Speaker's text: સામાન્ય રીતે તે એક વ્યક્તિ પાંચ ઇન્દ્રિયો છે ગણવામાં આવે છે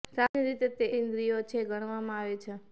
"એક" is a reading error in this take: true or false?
true